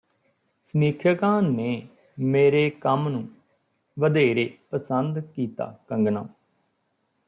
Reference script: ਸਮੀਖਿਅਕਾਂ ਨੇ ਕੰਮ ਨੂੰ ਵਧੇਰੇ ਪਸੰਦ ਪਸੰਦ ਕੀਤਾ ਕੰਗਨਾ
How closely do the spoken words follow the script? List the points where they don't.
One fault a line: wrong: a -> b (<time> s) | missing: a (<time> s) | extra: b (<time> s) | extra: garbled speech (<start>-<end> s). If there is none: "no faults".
extra: ਮੇਰੇ (2.2 s)
missing: ਪਸੰਦ (5.2 s)